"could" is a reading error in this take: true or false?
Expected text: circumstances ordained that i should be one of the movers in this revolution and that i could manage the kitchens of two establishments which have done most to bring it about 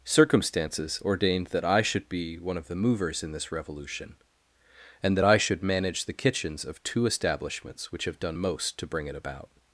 true